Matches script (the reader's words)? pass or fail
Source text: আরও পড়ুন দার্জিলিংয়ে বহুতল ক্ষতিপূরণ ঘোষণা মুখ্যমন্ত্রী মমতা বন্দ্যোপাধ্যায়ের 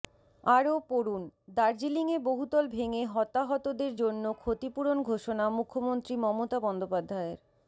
fail